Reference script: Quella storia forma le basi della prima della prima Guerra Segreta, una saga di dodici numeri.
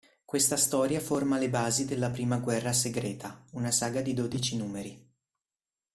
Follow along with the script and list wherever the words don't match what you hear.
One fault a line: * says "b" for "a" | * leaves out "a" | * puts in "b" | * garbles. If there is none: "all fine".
* says "Questa" for "Quella"
* leaves out "della prima"